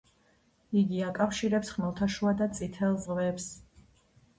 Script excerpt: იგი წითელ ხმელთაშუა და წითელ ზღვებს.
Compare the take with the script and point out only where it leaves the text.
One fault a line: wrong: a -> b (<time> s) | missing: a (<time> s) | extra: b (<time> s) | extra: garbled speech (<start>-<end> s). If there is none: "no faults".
wrong: წითელ -> აკავშირებს (1.1 s)